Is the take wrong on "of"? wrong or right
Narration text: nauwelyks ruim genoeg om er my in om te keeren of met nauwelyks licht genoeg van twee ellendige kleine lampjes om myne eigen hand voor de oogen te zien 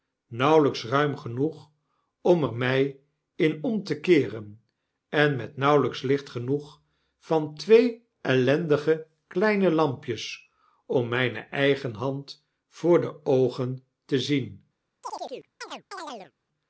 wrong